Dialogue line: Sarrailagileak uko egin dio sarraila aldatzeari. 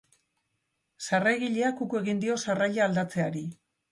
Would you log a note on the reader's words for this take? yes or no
no